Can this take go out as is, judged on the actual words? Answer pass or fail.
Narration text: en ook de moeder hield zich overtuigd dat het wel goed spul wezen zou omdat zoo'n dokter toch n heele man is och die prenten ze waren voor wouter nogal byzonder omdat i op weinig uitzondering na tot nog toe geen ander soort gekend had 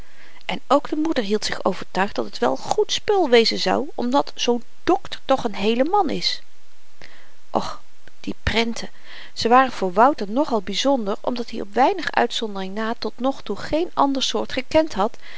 pass